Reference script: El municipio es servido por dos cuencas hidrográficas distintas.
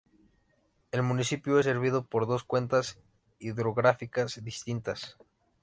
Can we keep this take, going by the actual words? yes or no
yes